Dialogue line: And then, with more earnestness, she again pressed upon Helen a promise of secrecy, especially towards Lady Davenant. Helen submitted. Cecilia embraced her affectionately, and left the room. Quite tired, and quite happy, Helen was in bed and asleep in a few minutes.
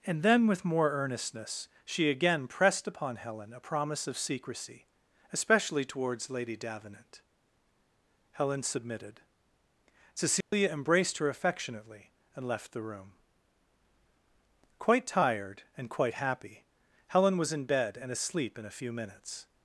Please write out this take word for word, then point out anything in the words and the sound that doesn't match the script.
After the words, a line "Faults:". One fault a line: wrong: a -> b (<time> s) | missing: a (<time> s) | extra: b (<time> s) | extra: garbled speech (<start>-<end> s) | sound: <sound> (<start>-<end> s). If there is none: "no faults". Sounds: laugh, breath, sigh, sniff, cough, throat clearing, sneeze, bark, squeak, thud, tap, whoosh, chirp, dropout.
And then, with more earnestness, she again pressed upon Helen a promise of secrecy, especially towards Lady Davenant. Helen submitted. Cecilia embraced her affectionately, and left the room. Quite tired, and quite happy, Helen was in bed and asleep in a few minutes.
Faults:
sound: dropout (10.4-10.5 s)